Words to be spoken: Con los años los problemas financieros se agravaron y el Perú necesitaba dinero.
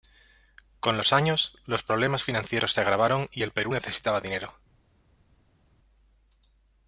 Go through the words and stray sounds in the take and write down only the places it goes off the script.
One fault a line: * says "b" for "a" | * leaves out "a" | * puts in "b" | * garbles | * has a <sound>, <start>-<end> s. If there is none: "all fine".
all fine